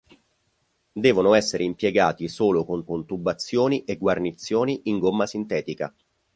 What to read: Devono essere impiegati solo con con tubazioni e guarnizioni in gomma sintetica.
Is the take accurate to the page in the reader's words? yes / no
yes